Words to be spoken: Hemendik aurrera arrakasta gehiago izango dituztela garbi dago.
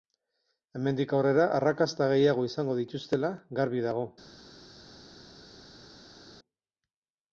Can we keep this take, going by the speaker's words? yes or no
yes